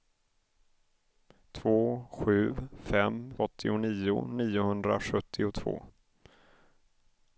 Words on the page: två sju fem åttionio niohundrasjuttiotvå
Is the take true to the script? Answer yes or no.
yes